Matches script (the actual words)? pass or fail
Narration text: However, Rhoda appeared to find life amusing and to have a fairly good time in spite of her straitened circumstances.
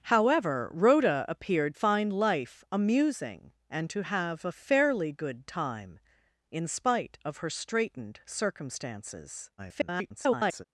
fail